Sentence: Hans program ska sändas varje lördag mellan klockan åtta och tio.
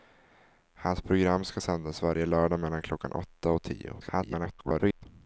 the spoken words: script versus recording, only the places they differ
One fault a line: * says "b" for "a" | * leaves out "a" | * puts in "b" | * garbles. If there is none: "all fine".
* garbles